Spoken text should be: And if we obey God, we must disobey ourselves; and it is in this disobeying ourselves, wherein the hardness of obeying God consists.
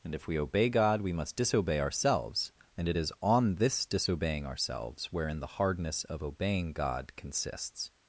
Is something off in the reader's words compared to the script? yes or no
yes